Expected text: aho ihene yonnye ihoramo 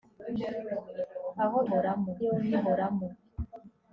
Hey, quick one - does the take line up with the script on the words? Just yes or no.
no